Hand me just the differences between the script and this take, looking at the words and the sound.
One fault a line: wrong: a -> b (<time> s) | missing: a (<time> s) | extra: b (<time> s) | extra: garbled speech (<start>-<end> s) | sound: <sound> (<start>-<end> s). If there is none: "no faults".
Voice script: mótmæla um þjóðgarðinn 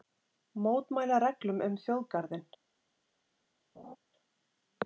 extra: reglum (1.2 s)
sound: laugh (3.7-4.0 s)